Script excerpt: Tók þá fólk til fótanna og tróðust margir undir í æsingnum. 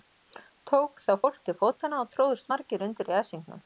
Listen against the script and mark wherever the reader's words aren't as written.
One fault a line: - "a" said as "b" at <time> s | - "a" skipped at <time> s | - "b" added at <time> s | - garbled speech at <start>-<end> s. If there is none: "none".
none